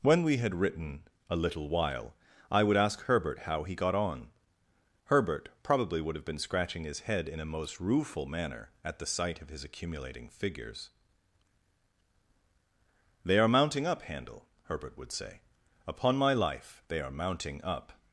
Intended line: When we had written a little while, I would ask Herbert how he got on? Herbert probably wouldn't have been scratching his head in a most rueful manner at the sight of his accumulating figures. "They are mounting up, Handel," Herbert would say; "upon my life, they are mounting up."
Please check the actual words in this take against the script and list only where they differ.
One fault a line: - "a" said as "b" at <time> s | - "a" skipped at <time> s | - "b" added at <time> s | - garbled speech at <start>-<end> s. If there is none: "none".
- "wouldn't" said as "would" at 6.0 s